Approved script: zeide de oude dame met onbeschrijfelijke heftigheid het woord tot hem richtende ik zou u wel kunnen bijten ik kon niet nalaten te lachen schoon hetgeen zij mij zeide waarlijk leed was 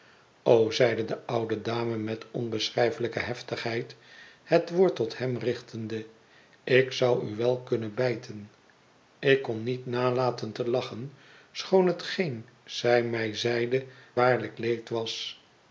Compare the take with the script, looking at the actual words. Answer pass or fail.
pass